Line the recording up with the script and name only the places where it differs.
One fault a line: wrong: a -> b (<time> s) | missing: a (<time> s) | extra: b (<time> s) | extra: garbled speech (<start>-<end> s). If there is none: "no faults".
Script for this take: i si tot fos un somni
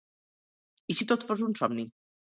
no faults